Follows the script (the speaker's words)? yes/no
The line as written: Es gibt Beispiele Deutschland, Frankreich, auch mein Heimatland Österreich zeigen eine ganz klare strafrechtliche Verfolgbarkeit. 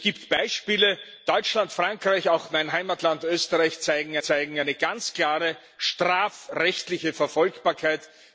no